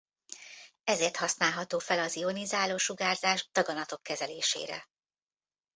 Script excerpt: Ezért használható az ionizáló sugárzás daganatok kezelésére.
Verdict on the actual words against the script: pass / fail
fail